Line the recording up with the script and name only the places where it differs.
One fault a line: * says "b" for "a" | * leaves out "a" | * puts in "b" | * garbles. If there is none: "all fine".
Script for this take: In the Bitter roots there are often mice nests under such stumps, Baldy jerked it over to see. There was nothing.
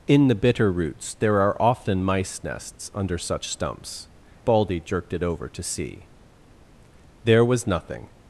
all fine